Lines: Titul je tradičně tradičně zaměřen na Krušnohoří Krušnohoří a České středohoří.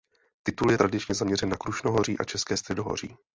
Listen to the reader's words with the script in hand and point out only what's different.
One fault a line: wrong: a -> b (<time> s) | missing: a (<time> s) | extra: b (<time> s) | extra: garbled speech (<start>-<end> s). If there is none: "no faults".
missing: tradičně (1.2 s)
missing: Krušnohoří (2.2 s)